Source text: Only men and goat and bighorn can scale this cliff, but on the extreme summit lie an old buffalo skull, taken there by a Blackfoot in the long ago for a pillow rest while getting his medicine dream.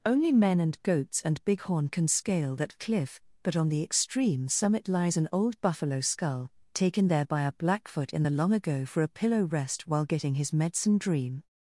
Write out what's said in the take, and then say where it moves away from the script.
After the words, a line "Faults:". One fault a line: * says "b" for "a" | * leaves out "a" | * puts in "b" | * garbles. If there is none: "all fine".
Only men and goats and bighorn can scale that cliff, but on the extreme summit lies an old buffalo skull, taken there by a Blackfoot in the long ago for a pillow rest while getting his medicine dream.
Faults:
* says "goats" for "goat"
* says "that" for "this"
* says "lies" for "lie"